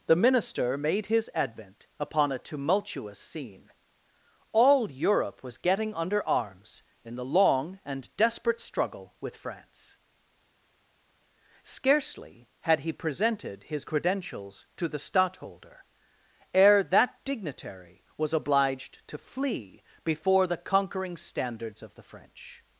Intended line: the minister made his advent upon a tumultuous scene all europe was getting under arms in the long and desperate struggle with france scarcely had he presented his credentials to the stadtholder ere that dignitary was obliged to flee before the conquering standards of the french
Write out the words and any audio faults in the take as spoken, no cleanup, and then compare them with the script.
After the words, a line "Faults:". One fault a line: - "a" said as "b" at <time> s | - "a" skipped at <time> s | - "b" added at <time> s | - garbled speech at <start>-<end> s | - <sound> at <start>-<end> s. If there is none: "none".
the minister made his advent upon a tumultuous scene all europe was getting under arms in the long and desperate struggle with france scarcely had he presented his credentials to the stadtholder ere that dignitary was obliged to flee before the conquering standards of the french
Faults:
none